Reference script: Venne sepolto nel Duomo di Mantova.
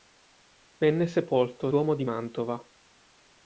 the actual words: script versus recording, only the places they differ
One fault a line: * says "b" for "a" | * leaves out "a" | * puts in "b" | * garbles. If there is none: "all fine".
* leaves out "nel"